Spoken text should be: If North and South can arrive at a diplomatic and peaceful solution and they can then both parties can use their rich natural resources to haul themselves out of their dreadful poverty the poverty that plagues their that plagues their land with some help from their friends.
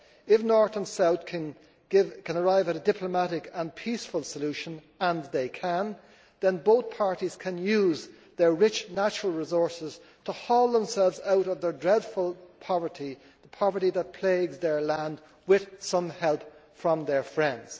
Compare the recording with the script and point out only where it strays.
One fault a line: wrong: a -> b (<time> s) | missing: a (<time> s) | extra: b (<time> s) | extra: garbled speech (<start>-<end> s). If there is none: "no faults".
missing: that plagues their (14.8 s)